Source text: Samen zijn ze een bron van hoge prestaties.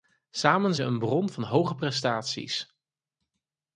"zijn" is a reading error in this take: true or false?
true